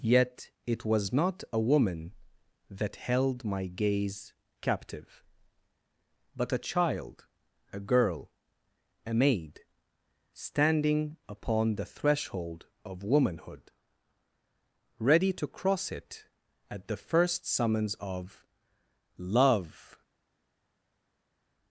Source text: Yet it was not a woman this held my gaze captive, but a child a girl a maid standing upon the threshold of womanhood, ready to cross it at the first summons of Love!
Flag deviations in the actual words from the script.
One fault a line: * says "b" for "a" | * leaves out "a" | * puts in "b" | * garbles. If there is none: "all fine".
* says "that" for "this"